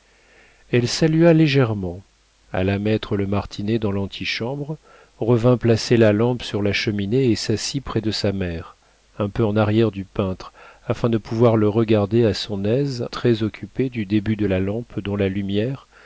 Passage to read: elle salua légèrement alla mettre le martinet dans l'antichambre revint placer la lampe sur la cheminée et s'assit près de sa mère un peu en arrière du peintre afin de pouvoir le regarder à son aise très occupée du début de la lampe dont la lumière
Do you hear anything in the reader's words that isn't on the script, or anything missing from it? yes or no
no